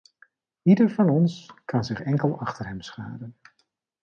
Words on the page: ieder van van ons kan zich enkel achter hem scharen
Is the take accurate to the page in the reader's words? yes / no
no